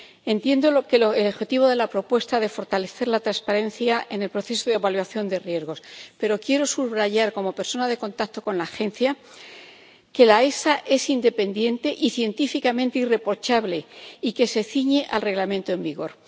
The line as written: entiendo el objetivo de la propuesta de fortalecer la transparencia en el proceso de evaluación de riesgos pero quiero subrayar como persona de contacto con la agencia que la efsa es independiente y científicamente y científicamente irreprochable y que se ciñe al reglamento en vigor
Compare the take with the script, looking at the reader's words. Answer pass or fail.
fail